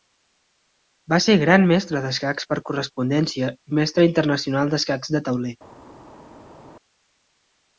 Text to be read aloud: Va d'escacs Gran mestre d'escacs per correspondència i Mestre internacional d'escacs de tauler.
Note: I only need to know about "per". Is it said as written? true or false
true